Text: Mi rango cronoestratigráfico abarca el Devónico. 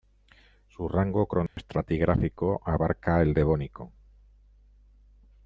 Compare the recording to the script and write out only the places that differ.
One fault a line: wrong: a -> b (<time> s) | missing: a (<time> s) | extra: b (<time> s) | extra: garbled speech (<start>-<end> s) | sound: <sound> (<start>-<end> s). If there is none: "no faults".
wrong: Mi -> Su (0.7 s)
sound: dropout (1.5-1.6 s)